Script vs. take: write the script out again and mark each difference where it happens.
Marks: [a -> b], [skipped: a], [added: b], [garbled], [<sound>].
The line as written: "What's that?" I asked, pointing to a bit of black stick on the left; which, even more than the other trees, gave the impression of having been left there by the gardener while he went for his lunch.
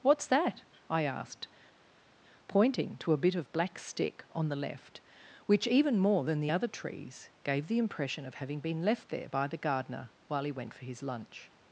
"What's that?" I asked, pointing to a bit of black stick on the left; which, even more than the other trees, gave the impression of having been left there by the gardener while he went for his lunch.